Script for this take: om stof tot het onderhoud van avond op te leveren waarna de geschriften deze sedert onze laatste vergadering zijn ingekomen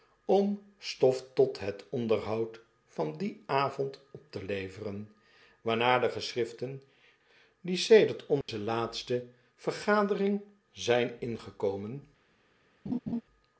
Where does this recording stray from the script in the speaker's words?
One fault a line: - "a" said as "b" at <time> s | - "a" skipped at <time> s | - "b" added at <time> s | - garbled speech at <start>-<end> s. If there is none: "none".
- "dien" added at 3.2 s
- "deze" said as "die" at 7.6 s